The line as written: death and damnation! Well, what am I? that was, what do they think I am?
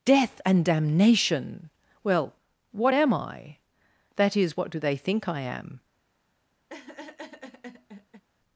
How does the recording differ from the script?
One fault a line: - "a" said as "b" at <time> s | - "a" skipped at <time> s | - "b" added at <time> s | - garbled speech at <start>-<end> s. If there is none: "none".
- "was" said as "is" at 4.4 s